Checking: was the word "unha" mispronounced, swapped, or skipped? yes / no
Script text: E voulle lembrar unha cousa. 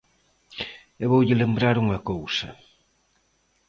no